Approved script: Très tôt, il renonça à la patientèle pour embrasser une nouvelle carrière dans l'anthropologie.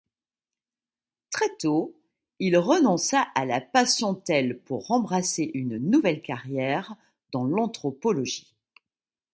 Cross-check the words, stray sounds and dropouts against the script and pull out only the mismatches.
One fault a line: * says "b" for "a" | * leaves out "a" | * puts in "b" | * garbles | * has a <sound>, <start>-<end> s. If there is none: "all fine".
all fine